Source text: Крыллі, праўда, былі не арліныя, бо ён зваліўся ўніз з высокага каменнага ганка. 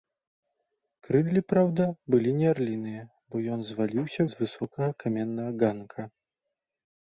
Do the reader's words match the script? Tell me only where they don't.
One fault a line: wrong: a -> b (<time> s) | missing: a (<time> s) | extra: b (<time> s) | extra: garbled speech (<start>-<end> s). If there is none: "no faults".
missing: ўніз (4.2 s)